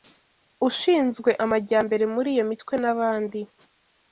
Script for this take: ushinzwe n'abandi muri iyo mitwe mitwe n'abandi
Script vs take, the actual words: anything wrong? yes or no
yes